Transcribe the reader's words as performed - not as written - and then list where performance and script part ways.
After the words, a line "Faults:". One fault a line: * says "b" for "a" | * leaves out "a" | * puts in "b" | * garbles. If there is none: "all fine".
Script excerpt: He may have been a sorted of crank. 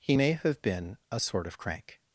He may have been a sort of crank.
Faults:
* says "sort" for "sorted"